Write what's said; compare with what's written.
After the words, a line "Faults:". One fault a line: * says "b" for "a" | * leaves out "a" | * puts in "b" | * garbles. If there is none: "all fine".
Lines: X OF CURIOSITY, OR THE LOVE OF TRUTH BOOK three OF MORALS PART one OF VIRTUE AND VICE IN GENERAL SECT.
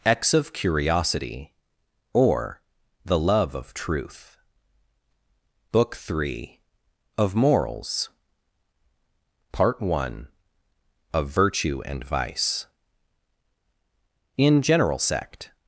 X OF CURIOSITY, OR THE LOVE OF TRUTH BOOK three OF MORALS PART one OF VIRTUE AND VICE IN GENERAL SECT.
Faults:
all fine